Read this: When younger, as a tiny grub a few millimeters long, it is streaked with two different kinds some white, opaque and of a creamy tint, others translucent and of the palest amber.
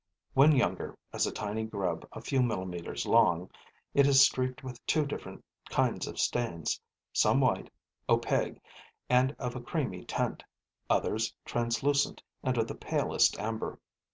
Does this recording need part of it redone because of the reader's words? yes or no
yes